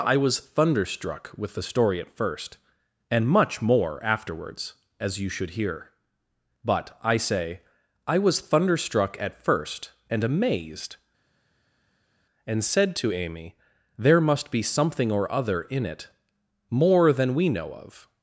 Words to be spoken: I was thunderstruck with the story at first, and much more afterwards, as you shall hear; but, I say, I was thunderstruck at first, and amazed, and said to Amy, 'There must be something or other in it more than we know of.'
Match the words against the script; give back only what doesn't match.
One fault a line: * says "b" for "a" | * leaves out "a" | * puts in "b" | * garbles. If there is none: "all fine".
* says "should" for "shall"